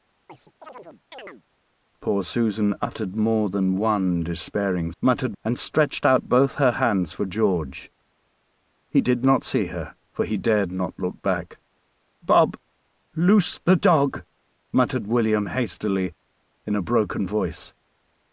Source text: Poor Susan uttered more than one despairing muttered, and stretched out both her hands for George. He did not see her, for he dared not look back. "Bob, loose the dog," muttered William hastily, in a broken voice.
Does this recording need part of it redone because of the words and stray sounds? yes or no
yes